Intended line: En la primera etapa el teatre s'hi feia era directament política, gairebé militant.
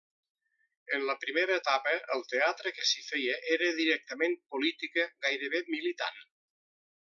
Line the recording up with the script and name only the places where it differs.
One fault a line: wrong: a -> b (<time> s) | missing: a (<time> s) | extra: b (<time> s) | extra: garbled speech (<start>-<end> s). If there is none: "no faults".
extra: que (2.8 s)